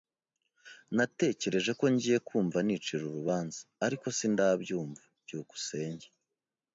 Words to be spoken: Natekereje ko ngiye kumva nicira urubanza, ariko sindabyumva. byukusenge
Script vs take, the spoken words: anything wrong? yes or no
no